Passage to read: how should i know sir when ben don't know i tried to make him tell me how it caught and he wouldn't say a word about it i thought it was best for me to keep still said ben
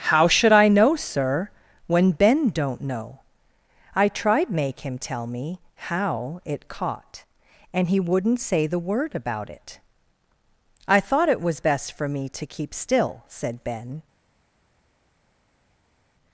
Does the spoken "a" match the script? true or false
false